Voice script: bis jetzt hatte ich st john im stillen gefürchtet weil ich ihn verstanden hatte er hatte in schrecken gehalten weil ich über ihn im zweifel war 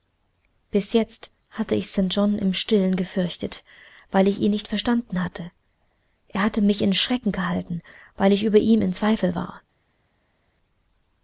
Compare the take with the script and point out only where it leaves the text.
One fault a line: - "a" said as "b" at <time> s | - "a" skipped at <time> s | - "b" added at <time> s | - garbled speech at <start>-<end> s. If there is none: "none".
- "nicht" added at 4.5 s
- "mich" added at 6.6 s